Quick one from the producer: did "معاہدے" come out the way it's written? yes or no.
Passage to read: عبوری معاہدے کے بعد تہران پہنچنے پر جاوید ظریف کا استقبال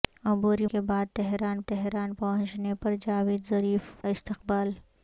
no